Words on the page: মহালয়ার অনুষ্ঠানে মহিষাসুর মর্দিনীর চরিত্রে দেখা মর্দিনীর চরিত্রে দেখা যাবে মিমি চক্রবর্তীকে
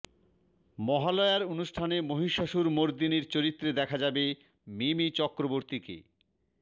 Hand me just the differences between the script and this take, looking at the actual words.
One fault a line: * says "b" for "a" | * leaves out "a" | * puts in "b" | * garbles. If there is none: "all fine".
* leaves out "মর্দিনীর চরিত্রে দেখা"